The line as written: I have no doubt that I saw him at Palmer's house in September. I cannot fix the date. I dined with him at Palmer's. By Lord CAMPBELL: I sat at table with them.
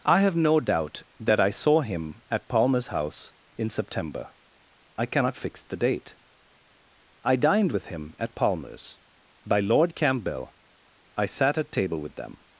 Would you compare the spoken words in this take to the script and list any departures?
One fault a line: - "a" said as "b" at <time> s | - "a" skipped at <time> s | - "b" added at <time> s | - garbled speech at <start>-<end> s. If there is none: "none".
none